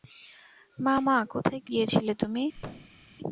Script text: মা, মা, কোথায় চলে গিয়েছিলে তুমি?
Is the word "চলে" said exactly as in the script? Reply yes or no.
no